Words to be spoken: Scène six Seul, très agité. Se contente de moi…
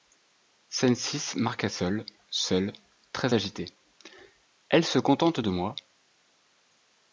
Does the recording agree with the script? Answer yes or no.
no